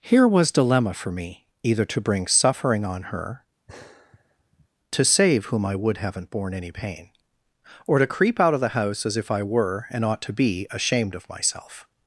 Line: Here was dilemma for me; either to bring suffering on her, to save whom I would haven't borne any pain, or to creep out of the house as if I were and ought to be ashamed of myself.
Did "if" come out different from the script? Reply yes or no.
no